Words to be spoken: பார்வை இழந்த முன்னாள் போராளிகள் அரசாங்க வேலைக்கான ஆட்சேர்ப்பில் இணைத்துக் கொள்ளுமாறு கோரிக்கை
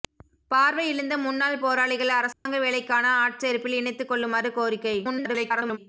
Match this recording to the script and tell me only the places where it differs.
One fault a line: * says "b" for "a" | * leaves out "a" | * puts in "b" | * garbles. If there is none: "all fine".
* garbles